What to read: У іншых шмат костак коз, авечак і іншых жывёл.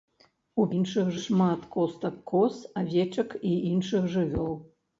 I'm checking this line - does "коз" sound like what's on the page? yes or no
yes